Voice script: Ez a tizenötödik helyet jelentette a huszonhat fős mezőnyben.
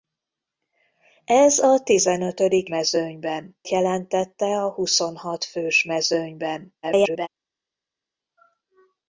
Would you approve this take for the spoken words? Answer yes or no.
no